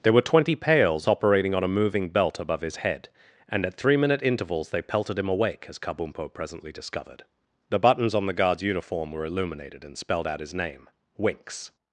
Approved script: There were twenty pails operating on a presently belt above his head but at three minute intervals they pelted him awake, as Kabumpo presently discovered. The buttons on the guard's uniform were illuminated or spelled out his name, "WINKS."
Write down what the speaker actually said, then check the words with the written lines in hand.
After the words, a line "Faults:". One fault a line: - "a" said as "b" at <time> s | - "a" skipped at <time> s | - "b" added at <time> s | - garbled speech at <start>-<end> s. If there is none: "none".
There were twenty pails operating on a moving belt above his head and at three minute intervals they pelted him awake, as Kabumpo presently discovered. The buttons on the guard's uniform were illuminated and spelled out his name, "WINKS."
Faults:
- "presently" said as "moving" at 1.7 s
- "but" said as "and" at 3.5 s
- "or" said as "and" at 9.8 s